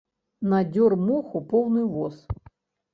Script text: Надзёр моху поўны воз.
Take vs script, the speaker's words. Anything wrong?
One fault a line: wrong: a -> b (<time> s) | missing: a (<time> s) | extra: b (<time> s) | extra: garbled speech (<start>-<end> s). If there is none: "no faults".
no faults